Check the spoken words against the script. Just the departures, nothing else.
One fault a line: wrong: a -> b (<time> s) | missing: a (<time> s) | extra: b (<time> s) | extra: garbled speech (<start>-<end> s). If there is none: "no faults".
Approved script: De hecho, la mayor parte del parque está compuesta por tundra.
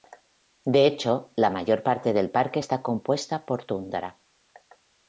no faults